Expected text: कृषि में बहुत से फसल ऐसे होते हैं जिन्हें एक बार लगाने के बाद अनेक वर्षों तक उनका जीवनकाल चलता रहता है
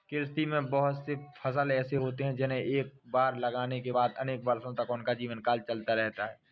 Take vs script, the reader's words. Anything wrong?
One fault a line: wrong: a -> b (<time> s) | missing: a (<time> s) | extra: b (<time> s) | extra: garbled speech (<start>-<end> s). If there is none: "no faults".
no faults